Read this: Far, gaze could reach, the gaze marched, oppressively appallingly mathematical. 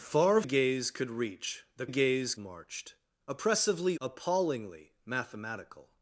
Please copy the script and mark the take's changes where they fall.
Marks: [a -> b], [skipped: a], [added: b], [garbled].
Far, gaze could reach, the gaze marched, oppressively appallingly mathematical.